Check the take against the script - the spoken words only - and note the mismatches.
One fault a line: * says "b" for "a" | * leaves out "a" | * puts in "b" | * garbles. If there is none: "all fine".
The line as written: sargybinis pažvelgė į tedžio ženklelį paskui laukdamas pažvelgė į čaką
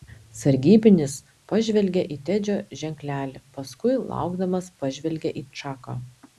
all fine